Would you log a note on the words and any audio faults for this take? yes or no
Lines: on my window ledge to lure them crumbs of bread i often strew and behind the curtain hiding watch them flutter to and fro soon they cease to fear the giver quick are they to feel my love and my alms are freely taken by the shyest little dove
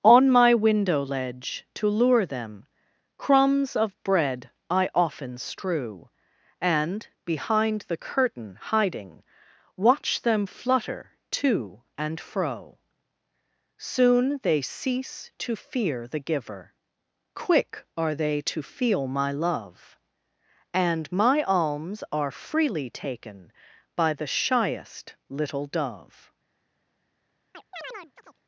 yes